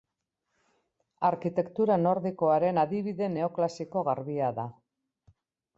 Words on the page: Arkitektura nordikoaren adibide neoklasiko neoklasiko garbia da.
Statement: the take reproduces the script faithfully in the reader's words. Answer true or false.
false